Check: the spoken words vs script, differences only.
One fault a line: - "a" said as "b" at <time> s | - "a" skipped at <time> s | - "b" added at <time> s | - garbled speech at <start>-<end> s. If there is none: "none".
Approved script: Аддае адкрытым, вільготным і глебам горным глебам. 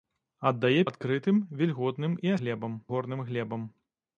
none